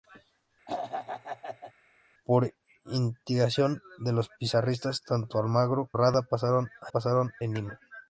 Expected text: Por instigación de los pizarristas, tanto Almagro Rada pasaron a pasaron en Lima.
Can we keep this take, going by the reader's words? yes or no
yes